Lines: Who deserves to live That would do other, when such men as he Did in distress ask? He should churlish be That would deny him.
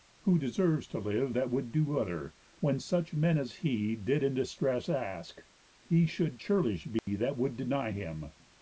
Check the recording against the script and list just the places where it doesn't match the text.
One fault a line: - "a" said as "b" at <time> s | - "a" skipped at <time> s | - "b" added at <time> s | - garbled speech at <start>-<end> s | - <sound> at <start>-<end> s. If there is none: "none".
- dropout at 7.0-7.1 s